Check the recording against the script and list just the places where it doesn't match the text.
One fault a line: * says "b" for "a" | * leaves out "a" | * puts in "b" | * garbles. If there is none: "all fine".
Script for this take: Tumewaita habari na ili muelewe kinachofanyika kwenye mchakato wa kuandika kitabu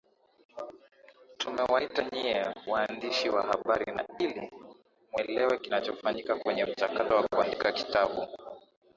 * puts in "nyie waandishi wa"